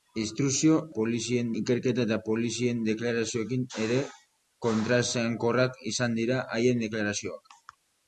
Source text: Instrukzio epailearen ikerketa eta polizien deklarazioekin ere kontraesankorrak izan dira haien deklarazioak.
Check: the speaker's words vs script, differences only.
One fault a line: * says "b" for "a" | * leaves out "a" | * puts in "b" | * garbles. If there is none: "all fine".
* says "polizien" for "epailearen"